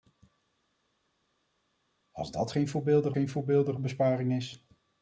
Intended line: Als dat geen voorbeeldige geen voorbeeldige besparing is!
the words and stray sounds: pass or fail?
pass